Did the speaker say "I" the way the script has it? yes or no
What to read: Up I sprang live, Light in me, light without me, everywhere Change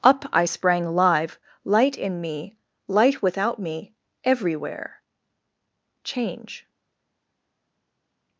yes